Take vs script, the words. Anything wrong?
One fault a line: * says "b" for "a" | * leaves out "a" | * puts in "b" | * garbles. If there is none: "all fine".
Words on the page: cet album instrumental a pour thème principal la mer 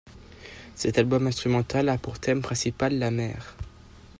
all fine